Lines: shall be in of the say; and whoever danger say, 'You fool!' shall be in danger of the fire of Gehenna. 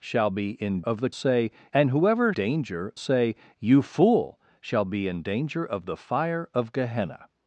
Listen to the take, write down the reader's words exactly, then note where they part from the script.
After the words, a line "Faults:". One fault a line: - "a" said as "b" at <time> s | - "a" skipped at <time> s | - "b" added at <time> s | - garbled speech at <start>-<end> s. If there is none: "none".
shall be in of the say; and whoever danger say, 'You fool!' shall be in danger of the fire of Gehenna.
Faults:
none